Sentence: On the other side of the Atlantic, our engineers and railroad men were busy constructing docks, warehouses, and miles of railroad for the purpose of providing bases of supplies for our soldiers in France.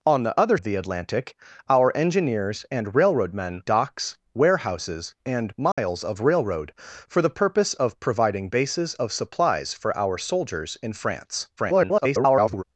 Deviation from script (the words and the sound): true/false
true